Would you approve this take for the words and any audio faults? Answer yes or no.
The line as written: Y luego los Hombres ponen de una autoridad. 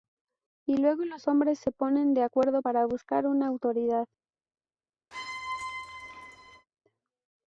no